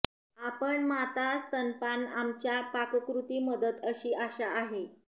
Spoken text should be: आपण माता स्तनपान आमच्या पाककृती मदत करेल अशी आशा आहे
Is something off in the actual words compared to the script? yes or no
yes